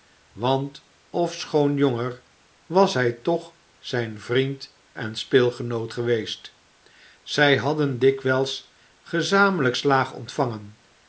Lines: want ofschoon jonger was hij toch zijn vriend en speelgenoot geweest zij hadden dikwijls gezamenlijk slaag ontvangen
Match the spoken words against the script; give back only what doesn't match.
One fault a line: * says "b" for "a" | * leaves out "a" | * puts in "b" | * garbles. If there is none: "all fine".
all fine